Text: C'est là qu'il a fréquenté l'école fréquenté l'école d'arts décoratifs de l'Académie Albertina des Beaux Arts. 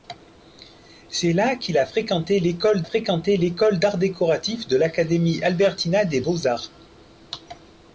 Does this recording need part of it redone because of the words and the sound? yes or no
no